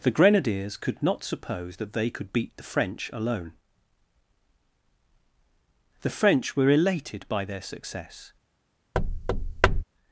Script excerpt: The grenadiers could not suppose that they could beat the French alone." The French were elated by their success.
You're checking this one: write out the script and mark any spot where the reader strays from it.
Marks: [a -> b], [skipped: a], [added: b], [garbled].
The grenadiers could not suppose that they could beat the French alone." The French were elated by their success.